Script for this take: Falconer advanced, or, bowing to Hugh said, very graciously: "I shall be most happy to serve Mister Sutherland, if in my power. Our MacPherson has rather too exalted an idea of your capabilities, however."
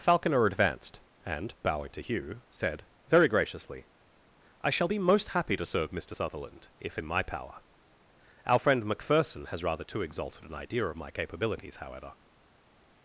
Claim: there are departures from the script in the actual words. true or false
true